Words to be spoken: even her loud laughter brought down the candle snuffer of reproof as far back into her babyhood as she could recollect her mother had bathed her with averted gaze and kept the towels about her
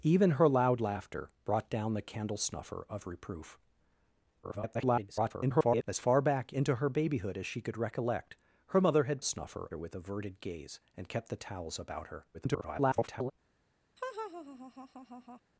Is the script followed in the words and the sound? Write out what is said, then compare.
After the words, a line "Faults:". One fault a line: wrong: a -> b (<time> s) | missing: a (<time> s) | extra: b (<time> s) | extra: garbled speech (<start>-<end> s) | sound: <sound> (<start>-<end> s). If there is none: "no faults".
even her loud laughter brought down the candle snuffer of reproof [garbled] as far back into her babyhood as she could recollect her mother had snuffer her with averted gaze and kept the towels about her [garbled]
Faults:
extra: garbled speech (4.4-5.8 s)
wrong: bathed -> snuffer (9.2 s)
extra: garbled speech (12.3-13.3 s)
sound: laugh (14.0-15.4 s)